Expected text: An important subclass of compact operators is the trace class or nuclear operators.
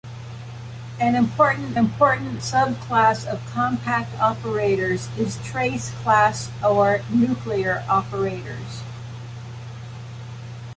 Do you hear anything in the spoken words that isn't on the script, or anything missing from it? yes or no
yes